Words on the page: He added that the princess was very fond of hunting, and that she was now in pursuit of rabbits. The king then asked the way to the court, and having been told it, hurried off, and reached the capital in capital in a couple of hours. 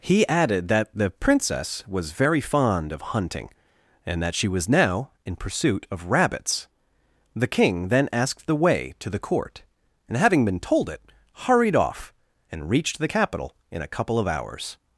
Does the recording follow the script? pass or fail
fail